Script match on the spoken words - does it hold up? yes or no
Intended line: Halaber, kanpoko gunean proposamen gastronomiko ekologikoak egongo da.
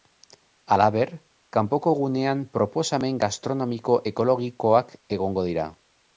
no